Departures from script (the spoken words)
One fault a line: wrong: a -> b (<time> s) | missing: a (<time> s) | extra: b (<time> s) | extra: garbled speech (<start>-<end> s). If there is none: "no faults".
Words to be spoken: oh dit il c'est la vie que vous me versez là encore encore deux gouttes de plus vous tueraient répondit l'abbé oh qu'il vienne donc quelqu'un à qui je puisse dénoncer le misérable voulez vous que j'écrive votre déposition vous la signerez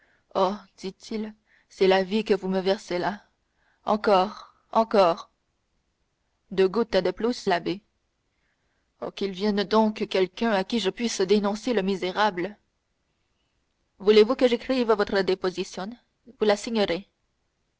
missing: vous tueraient répondit (7.5 s)